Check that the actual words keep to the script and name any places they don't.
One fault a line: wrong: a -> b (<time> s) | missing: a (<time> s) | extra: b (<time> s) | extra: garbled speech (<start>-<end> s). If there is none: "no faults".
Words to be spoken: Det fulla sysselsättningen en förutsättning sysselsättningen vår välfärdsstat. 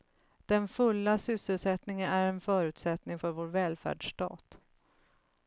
wrong: Det -> Den (0.5 s)
extra: är (2.1 s)
wrong: sysselsättningen -> för (3.2 s)